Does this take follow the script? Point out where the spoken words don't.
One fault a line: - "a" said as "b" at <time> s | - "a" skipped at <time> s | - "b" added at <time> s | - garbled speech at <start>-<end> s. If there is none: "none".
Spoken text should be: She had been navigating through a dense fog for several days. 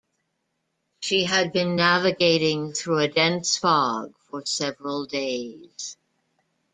none